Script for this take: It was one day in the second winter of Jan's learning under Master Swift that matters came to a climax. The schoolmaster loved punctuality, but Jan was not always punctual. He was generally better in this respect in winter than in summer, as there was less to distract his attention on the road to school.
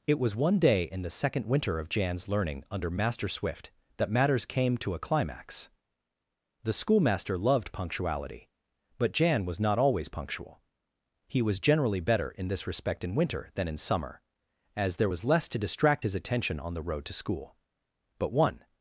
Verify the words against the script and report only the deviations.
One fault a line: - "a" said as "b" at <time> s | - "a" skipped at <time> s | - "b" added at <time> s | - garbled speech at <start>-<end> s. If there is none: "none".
- "But one" added at 18.2 s